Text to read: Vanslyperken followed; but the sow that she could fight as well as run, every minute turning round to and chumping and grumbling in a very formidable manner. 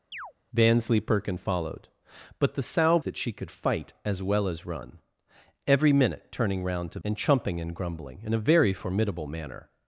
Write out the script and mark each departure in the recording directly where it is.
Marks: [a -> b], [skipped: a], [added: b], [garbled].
Vanslyperken followed; but the sow that she could fight as well as run, every minute turning round to and chumping and grumbling in a very formidable manner.